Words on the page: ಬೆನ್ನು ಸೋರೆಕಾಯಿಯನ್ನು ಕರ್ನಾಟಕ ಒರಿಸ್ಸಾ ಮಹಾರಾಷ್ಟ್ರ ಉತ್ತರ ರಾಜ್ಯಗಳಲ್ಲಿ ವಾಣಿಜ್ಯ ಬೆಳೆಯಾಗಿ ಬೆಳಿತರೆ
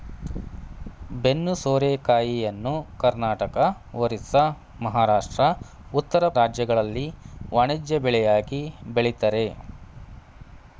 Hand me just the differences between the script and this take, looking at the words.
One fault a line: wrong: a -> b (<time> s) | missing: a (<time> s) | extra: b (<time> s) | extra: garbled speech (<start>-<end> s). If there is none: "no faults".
no faults